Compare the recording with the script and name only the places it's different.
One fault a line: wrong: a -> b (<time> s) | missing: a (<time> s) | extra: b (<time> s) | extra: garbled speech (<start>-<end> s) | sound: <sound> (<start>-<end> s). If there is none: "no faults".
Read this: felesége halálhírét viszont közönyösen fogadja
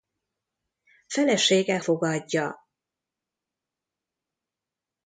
missing: halálhírét viszont közönyösen (1.8 s)